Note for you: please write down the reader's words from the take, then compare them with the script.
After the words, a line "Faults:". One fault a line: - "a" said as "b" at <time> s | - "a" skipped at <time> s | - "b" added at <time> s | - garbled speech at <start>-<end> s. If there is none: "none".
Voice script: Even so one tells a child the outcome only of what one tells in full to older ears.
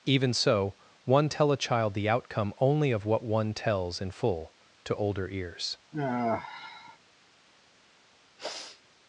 Even so one tell a child the outcome only of what one tells in full to older ears.
Faults:
- "tells" said as "tell" at 1.3 s